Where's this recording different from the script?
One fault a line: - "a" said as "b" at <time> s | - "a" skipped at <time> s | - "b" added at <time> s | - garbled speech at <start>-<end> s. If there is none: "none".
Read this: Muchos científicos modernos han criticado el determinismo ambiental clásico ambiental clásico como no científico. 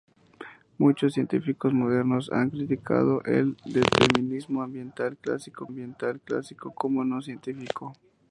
none